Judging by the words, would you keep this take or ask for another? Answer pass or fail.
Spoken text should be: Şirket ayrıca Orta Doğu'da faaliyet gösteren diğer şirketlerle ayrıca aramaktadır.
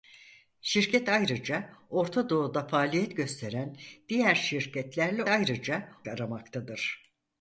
pass